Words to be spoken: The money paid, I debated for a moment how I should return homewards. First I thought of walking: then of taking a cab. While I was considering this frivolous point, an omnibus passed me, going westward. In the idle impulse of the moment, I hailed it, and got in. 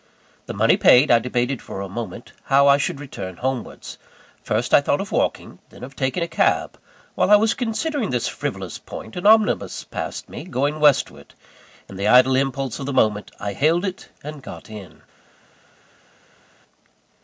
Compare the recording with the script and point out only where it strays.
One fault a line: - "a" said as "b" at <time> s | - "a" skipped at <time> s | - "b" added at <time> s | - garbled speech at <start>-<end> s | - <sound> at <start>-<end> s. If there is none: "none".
none